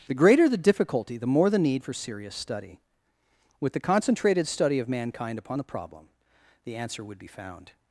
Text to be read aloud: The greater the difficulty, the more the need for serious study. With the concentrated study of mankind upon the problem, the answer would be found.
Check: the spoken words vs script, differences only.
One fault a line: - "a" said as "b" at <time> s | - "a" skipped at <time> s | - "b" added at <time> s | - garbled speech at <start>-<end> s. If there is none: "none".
none